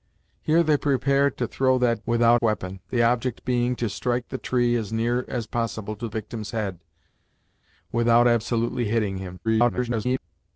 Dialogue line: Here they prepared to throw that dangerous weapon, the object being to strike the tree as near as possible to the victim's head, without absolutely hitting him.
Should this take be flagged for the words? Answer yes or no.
yes